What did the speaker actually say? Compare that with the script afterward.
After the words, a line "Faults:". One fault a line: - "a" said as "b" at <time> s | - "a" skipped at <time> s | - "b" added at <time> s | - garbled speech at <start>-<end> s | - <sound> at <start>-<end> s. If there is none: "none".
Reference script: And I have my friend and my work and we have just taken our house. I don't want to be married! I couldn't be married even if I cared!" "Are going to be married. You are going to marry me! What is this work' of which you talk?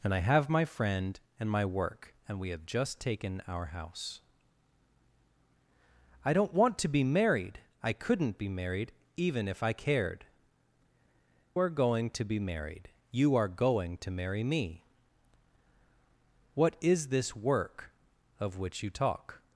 And I have my friend and my work and we have just taken our house. I don't want to be married! I couldn't be married even if I cared!" "Are going to be married. You are going to marry me! What is this work' of which you talk?
Faults:
none